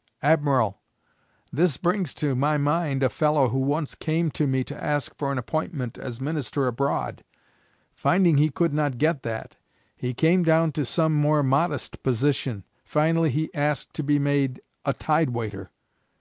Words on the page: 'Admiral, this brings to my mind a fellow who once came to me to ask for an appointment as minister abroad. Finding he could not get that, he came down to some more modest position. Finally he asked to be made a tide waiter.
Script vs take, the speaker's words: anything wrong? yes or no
no